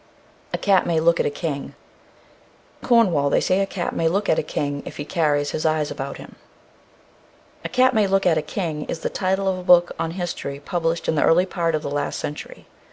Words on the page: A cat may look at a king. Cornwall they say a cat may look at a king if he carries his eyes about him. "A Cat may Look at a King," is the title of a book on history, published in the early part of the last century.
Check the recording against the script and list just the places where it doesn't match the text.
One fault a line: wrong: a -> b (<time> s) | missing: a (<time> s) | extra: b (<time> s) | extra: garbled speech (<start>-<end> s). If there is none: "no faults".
no faults